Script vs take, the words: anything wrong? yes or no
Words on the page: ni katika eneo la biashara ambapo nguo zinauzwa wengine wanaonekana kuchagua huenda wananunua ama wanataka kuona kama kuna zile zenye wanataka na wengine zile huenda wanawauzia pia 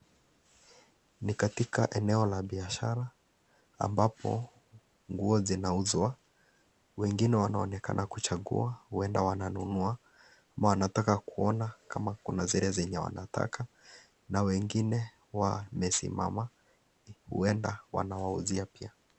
yes